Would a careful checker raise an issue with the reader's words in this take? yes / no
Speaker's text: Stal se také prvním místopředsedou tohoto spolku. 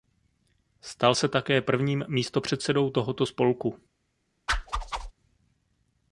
no